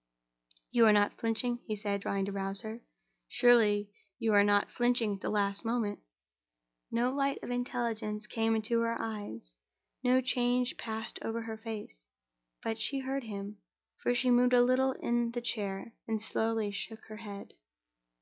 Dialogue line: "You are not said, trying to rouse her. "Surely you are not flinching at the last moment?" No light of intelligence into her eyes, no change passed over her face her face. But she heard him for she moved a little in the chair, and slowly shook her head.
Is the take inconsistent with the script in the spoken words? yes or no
yes